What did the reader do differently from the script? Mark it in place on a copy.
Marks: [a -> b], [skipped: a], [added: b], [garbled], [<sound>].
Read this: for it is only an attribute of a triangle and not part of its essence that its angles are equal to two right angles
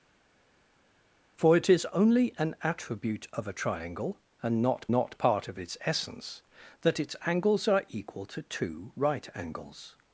for it is only an attribute of a triangle and not [added: not] part of its essence that its angles are equal to two right angles